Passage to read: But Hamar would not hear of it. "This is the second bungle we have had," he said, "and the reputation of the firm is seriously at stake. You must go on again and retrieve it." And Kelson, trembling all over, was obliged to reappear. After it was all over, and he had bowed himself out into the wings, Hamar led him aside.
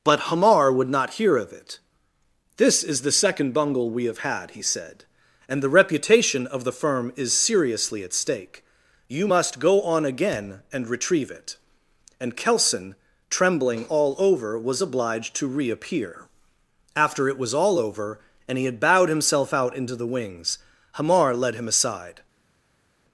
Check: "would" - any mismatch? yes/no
no